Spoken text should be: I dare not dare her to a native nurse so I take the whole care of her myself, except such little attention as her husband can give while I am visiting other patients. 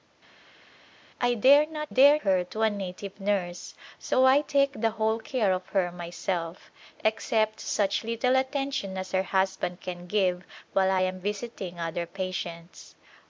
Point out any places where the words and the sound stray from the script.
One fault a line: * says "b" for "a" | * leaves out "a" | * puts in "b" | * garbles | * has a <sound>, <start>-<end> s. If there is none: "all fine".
all fine